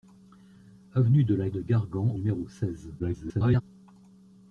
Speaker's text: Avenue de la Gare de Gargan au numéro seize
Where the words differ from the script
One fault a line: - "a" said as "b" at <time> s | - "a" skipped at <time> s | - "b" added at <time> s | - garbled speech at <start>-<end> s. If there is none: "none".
- "Gare" skipped at 1.5 s
- "au" skipped at 2.1 s
- garbled speech at 3.0-3.6 s